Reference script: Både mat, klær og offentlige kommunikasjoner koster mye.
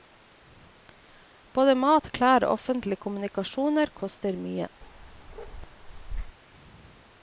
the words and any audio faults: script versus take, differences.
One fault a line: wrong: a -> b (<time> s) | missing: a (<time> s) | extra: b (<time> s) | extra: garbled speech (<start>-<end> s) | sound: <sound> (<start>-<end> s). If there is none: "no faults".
sound: bark (4.8-6.4 s)